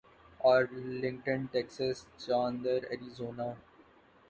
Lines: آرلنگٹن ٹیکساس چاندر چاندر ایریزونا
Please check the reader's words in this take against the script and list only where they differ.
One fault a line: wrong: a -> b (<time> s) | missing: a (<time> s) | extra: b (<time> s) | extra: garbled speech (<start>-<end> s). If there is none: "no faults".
missing: چاندر (2.8 s)